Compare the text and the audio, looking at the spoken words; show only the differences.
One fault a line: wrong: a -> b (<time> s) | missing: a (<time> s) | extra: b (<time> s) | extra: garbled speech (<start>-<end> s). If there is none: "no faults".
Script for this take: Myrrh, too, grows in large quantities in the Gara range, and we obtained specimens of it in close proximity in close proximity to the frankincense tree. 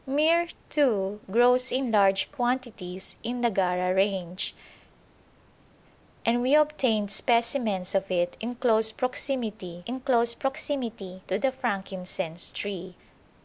no faults